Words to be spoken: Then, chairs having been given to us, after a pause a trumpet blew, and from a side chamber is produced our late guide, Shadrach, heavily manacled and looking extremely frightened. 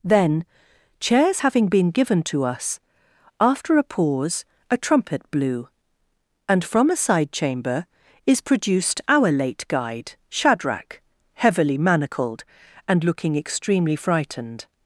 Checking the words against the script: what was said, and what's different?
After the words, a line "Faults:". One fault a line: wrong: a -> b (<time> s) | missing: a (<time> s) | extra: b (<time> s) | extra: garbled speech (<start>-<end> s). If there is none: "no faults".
Then, chairs having been given to us, after a pause a trumpet blew, and from a side chamber is produced our late guide, Shadrach, heavily manacled and looking extremely frightened.
Faults:
no faults